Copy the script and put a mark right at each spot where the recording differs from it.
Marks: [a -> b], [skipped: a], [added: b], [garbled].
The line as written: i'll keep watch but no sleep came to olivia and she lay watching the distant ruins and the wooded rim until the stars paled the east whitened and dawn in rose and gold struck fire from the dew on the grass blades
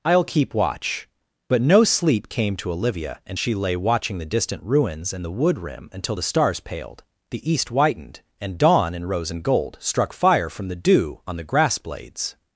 i'll keep watch but no sleep came to olivia and she lay watching the distant ruins and the [wooded -> wood] rim until the stars paled the east whitened and dawn in rose and gold struck fire from the dew on the grass blades